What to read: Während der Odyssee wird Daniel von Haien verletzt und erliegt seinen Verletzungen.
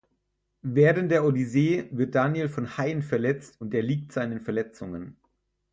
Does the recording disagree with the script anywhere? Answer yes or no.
no